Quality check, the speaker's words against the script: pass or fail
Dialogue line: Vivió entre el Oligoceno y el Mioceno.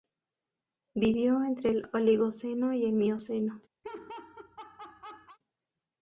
pass